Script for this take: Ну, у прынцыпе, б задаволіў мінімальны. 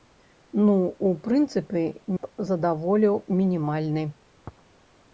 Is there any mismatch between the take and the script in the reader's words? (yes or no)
no